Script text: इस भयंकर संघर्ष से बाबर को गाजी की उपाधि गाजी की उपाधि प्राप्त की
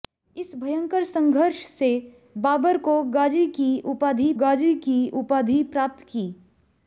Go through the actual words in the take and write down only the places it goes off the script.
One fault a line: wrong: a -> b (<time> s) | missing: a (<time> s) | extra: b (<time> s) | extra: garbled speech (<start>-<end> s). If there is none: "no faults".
no faults